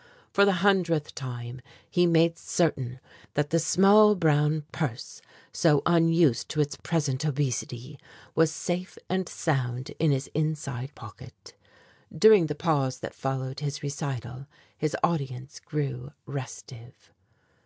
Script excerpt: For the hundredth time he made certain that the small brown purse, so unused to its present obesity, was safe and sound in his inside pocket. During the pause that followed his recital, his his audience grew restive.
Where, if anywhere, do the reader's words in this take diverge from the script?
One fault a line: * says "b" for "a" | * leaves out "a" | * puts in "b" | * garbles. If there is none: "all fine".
* leaves out "his"